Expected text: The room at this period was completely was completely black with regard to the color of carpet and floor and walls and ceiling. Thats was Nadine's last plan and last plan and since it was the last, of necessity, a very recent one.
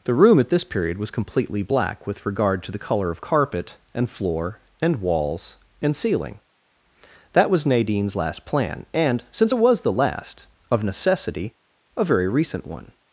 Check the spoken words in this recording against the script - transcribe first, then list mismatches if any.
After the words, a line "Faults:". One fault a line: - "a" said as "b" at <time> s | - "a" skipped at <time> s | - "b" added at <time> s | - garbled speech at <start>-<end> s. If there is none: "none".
The room at this period was completely black with regard to the color of carpet and floor and walls and ceiling. That was Nadine's last plan and since it was the last, of necessity, a very recent one.
Faults:
- "was completely" skipped at 1.6 s
- "Thats" said as "That" at 7.3 s
- "last plan and" skipped at 9.2 s